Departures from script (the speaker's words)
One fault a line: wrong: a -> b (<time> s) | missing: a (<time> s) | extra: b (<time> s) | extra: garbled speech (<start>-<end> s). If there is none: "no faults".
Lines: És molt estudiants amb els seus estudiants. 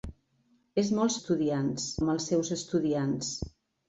no faults